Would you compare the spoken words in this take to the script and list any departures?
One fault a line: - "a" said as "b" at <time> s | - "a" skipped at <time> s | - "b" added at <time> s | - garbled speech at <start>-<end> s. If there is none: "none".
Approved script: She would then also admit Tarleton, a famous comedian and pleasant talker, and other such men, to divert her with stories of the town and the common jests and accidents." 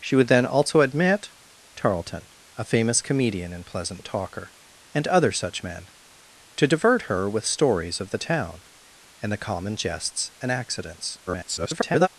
- garbled speech at 11.3-12.1 s